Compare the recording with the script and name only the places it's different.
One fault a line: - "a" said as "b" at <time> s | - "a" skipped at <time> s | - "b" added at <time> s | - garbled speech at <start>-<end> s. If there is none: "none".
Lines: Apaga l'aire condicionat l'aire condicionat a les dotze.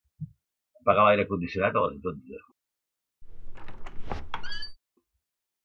- "l'aire condicionat" skipped at 1.8 s